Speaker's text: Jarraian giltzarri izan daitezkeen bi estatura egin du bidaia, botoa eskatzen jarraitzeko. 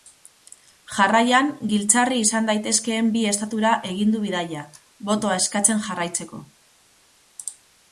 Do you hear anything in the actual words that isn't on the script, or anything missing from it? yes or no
no